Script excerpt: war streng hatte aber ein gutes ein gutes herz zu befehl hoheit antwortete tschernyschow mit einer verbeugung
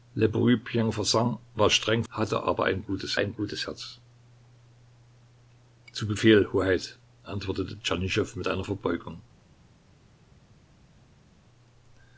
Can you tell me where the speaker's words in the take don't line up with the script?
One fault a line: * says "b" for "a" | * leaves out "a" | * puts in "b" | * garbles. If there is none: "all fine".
all fine